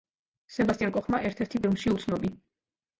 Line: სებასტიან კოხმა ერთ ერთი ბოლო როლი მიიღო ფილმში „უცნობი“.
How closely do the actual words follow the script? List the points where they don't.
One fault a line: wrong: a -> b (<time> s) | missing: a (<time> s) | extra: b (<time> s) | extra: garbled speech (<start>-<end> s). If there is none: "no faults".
missing: ბოლო როლი მიიღო (1.6 s)